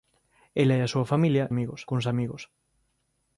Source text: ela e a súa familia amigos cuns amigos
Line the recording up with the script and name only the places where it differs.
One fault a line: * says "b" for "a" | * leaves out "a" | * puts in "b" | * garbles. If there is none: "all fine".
all fine